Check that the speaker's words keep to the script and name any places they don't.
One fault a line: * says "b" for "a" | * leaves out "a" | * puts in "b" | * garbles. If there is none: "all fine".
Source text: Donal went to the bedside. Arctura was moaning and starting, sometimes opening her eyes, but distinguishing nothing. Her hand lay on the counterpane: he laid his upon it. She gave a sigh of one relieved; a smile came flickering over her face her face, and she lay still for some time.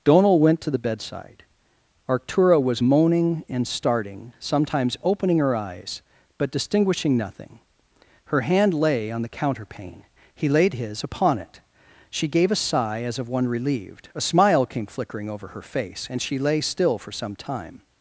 * puts in "as"
* leaves out "her face"